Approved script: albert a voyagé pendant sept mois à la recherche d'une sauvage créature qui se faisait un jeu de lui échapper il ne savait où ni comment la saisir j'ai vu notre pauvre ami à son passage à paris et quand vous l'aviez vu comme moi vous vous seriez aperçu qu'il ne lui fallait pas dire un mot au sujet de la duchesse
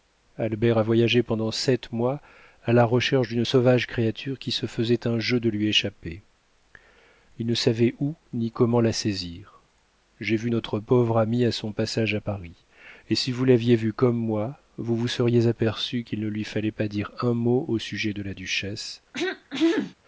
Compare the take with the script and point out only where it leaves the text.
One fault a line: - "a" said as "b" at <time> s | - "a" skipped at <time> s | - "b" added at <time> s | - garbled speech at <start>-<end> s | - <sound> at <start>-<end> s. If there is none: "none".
- "quand" said as "si" at 13.2 s
- throat clearing at 19.1-19.9 s